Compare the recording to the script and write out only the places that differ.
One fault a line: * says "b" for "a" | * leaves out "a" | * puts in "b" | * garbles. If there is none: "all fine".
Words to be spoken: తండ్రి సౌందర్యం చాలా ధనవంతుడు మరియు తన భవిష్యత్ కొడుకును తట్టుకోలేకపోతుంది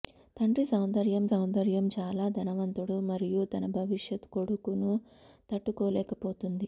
* puts in "సౌందర్యం"